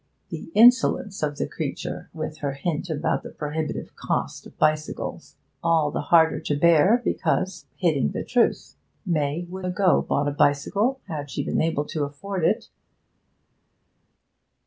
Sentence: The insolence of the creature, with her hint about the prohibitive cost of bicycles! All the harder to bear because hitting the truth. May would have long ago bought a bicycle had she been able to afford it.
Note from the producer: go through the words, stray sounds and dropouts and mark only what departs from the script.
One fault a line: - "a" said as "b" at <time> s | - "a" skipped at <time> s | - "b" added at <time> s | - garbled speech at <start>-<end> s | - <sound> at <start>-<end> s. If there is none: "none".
- "have long" skipped at 9.7 s